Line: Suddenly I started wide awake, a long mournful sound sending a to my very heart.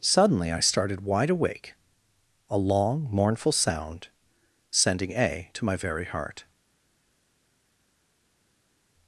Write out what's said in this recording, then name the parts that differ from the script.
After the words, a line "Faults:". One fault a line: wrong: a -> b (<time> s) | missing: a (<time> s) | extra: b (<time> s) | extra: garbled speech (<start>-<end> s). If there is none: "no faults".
Suddenly I started wide awake, a long mournful sound sending a to my very heart.
Faults:
no faults